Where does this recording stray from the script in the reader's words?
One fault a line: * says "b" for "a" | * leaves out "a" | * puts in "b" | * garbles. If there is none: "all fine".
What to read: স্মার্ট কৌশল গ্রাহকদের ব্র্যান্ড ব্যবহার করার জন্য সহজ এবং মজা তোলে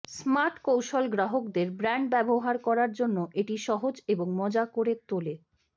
* puts in "এটি"
* puts in "করে"